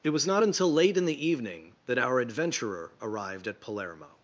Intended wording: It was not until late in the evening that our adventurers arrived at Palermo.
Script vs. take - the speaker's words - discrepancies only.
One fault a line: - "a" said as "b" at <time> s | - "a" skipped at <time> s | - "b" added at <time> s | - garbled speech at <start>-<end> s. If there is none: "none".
- "adventurers" said as "adventurer" at 2.2 s